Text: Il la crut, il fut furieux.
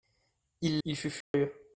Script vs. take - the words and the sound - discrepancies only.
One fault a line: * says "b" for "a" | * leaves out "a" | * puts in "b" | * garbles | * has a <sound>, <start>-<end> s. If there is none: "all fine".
* leaves out "la crut"
* has a dropout, 1.2-1.3 s